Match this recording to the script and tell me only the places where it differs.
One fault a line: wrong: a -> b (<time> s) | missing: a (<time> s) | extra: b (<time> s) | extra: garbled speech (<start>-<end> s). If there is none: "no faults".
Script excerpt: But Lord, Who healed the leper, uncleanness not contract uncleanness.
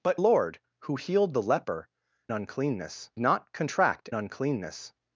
no faults